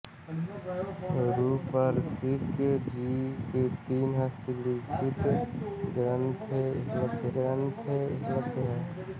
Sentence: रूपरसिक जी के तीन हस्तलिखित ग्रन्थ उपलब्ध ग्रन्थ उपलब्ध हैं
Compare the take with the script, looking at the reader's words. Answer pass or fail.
pass